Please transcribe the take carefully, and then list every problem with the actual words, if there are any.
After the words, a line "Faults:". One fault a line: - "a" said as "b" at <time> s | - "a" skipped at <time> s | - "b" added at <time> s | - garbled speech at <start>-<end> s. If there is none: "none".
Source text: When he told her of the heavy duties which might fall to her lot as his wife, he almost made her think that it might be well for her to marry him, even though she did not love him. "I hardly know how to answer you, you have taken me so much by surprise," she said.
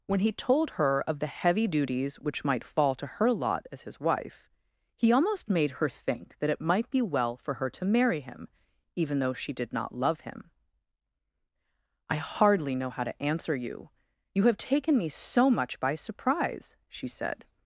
When he told her of the heavy duties which might fall to her lot as his wife, he almost made her think that it might be well for her to marry him, even though she did not love him. "I hardly know how to answer you, you have taken me so much by surprise," she said.
Faults:
none